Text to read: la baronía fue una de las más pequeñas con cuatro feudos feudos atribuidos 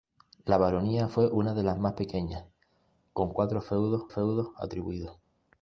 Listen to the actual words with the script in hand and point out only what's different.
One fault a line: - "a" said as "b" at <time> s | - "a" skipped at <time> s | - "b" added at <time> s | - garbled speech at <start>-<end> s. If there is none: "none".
none